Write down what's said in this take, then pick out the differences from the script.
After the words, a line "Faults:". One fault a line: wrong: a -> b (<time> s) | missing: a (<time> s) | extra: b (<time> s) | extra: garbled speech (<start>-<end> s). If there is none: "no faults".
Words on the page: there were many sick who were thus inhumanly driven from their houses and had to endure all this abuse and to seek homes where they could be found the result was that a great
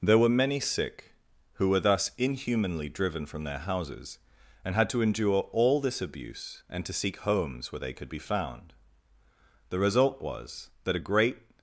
there were many sick who were thus inhumanly driven from their houses and had to endure all this abuse and to seek homes where they could be found the result was that a great
Faults:
no faults